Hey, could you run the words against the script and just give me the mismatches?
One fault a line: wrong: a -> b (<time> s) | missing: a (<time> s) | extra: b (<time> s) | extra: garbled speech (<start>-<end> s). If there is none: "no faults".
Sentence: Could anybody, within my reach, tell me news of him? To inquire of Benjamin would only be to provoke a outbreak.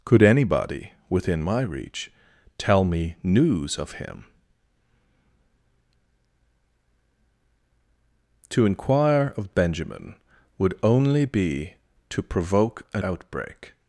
no faults